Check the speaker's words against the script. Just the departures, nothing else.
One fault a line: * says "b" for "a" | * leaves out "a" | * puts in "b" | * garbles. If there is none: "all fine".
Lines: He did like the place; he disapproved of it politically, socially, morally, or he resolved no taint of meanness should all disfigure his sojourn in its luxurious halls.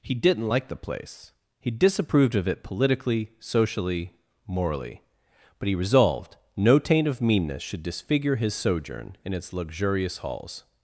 * says "didn't" for "did"
* says "but" for "or"
* leaves out "all"